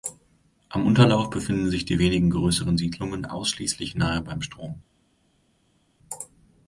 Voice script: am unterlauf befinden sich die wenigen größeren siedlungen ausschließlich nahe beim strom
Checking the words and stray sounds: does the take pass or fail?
pass